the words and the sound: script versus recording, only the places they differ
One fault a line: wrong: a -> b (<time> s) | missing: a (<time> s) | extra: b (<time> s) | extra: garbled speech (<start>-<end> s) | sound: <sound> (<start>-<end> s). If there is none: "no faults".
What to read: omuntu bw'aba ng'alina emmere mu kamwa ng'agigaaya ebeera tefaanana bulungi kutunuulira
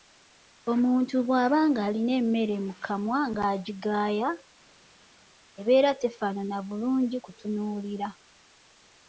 no faults